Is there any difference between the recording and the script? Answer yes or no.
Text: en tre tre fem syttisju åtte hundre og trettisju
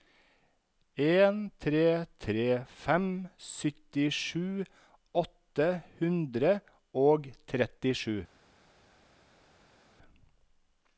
no